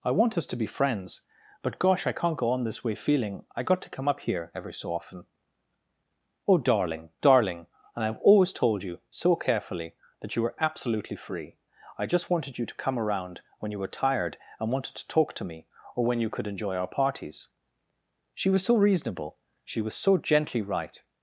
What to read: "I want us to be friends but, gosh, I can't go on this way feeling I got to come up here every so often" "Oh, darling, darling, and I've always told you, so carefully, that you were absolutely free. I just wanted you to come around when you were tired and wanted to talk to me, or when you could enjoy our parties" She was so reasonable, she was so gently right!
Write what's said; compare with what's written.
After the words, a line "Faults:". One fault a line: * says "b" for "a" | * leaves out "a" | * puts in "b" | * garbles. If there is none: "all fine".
"I want us to be friends but, gosh, I can't go on this way feeling I got to come up here every so often" "Oh, darling, darling, and I've always told you, so carefully, that you were absolutely free. I just wanted you to come around when you were tired and wanted to talk to me, or when you could enjoy our parties" She was so reasonable, she was so gently right!
Faults:
all fine